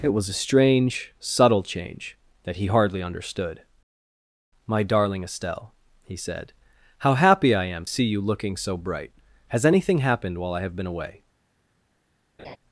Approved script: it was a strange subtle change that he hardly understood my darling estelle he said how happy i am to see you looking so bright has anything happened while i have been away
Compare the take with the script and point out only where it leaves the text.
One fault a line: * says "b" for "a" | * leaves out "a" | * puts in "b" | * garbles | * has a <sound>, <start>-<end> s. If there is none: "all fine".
* leaves out "to"
* has a laugh, 12.4-12.6 s